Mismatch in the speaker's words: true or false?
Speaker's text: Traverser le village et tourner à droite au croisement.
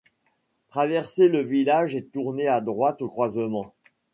false